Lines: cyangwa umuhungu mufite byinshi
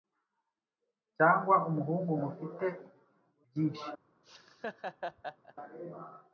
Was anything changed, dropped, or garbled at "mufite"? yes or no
no